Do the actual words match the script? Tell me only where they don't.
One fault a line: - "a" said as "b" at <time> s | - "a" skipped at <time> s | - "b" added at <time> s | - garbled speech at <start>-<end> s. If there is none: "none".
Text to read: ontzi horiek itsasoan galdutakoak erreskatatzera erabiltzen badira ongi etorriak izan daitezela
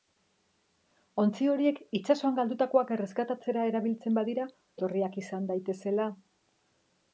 - "ongi" skipped at 4.5 s